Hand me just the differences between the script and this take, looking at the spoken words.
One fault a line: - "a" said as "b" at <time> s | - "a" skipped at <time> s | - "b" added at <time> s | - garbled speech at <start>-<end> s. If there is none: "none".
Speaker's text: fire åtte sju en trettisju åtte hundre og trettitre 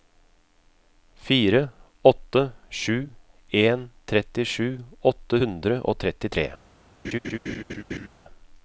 none